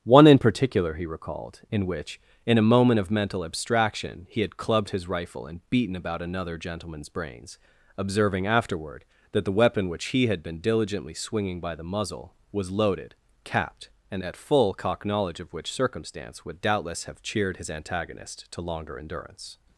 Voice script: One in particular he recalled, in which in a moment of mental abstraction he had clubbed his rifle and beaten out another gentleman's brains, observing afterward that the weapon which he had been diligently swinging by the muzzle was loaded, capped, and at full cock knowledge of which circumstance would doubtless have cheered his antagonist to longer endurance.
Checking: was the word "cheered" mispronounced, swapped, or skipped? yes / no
no